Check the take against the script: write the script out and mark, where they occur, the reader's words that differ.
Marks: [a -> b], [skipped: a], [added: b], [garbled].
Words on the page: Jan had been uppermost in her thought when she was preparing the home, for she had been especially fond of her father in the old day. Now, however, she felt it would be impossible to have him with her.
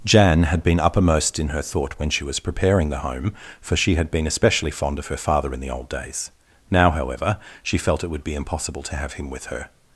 Jan had been uppermost in her thought when she was preparing the home, for she had been especially fond of her father in the old [day. -> days] Now, however, she felt it would be impossible to have him with her.